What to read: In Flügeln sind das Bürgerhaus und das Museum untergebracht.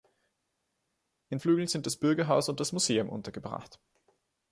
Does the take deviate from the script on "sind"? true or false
false